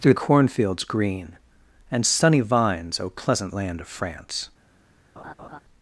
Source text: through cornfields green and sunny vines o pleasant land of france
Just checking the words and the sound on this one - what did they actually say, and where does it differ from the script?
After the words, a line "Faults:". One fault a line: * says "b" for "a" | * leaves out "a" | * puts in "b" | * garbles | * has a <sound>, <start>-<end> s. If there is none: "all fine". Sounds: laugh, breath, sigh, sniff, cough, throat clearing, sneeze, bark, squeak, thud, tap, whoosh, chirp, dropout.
through cornfields green and sunny vines o pleasant land of france
Faults:
* has a laugh, 5.2-5.6 s